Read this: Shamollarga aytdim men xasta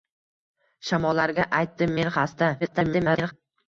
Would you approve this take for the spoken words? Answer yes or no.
no